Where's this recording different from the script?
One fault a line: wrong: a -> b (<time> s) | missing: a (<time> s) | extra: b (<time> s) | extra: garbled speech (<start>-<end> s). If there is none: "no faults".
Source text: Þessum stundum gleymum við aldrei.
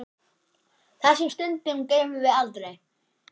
no faults